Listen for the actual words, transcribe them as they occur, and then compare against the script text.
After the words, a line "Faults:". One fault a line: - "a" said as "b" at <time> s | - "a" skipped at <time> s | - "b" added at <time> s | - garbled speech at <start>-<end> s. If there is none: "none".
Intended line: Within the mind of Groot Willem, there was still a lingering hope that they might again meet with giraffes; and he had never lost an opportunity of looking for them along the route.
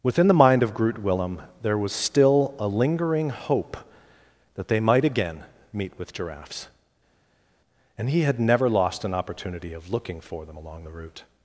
Within the mind of Groot Willem, there was still a lingering hope that they might again meet with giraffes; and he had never lost an opportunity of looking for them along the route.
Faults:
none